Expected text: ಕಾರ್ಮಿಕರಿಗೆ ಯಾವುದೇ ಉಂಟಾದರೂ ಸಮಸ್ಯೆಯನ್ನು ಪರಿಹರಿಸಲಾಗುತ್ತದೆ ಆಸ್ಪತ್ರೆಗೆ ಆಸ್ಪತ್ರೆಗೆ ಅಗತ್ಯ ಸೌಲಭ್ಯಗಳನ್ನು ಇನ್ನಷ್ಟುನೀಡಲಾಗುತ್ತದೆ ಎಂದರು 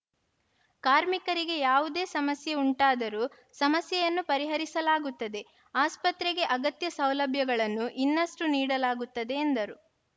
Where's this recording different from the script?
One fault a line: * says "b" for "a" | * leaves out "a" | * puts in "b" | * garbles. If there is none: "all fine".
* puts in "ಸಮಸ್ಯೆ"
* leaves out "ಆಸ್ಪತ್ರೆಗೆ"